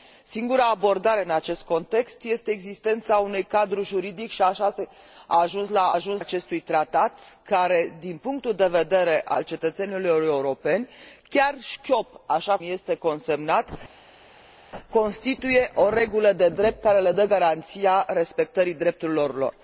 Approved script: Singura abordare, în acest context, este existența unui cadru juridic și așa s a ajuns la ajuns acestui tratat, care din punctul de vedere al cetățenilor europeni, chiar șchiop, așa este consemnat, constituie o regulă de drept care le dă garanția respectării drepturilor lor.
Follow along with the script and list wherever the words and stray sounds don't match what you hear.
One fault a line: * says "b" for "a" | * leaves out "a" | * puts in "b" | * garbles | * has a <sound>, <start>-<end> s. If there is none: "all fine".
all fine